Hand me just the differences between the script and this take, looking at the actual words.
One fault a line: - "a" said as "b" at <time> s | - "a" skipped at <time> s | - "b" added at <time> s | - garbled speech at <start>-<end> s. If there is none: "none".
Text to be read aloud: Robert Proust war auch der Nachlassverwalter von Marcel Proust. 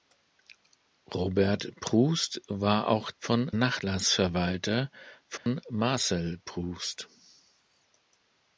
- "der" said as "von" at 3.2 s